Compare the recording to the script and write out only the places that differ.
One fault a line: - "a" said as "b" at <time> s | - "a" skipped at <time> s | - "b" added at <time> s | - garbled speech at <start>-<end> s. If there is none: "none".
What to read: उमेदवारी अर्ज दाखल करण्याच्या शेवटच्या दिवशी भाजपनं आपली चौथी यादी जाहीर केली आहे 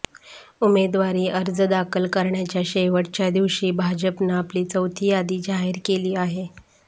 none